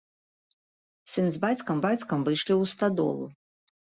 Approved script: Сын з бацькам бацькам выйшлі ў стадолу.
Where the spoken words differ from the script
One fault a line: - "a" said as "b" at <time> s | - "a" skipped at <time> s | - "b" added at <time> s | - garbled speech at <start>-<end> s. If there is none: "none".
none